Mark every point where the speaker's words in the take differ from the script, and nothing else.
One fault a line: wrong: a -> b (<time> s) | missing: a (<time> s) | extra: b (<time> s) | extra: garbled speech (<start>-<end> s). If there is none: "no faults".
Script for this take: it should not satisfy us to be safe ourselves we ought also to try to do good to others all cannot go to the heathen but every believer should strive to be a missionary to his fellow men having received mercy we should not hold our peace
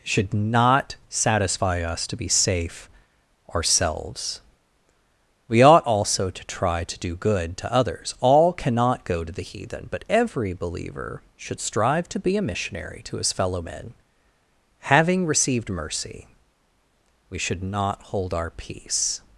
missing: it (0.0 s)